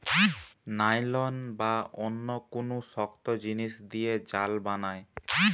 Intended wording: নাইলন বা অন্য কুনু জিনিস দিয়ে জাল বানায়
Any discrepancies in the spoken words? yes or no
yes